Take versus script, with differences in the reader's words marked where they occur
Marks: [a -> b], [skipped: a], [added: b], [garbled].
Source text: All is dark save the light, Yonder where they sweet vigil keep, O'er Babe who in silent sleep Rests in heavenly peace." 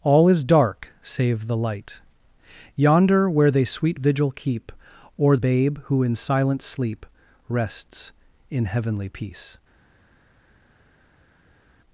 All is dark save the light, Yonder where they sweet vigil keep, O'er Babe who in silent sleep Rests in heavenly peace."